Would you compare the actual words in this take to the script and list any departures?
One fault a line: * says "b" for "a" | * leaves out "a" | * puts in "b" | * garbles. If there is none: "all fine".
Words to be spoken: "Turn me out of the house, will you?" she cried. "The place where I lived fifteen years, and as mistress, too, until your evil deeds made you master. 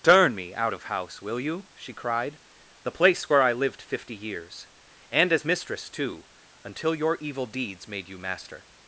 * leaves out "the"
* says "fifty" for "fifteen"